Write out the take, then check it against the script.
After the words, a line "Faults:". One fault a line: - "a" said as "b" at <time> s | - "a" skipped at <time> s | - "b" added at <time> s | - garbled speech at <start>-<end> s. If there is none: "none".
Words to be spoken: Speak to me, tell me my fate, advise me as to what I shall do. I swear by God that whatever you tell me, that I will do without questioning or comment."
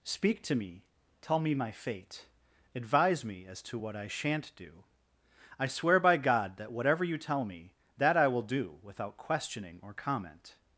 Speak to me, tell me my fate, advise me as to what I shan't do. I swear by God that whatever you tell me, that I will do without questioning or comment."
Faults:
- "shall" said as "shan't" at 4.1 s